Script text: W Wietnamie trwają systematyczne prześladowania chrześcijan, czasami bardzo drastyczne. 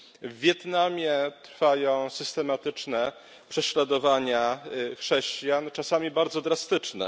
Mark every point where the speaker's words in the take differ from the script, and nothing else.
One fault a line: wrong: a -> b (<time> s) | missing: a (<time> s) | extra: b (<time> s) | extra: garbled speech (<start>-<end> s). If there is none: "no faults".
no faults